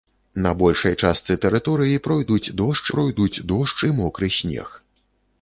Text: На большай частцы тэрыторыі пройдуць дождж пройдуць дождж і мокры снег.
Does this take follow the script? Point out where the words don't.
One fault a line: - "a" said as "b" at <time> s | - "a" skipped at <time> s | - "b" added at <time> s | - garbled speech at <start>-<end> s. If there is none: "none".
none